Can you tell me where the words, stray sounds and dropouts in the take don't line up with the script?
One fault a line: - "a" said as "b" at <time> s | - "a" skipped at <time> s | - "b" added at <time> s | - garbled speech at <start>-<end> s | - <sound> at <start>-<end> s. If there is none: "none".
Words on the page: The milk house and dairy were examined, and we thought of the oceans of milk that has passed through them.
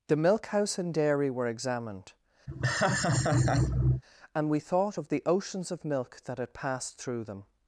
- laugh at 2.5-4.0 s
- "has" said as "had" at 6.4 s